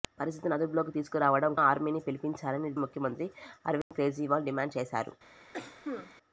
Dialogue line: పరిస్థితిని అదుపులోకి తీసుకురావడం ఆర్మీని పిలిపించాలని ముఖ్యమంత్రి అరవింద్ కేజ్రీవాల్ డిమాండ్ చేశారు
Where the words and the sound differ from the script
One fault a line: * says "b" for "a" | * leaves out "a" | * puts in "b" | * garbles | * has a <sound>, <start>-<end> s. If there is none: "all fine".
* has a dropout, 3.8-3.9 s
* has a cough, 5.5-6.1 s